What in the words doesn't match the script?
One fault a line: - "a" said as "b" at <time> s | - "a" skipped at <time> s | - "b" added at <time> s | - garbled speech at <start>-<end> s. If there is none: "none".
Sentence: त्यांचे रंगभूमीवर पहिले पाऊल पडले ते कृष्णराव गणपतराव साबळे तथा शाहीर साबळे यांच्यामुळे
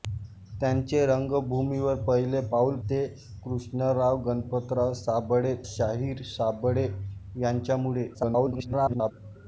- "पडले" skipped at 2.8 s
- "तथा" skipped at 5.5 s
- garbled speech at 8.1-9.1 s